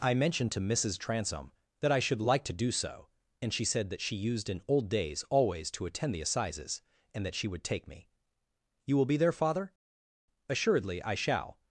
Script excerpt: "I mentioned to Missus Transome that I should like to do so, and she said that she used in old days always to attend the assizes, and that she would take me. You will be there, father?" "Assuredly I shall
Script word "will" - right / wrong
right